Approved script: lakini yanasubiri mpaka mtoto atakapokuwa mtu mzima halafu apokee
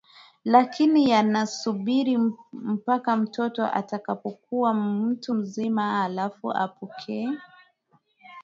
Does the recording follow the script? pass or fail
pass